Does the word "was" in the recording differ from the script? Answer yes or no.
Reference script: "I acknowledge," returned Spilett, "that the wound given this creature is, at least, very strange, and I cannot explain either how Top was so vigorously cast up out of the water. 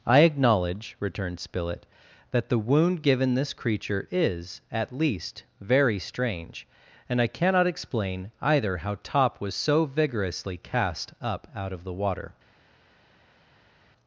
no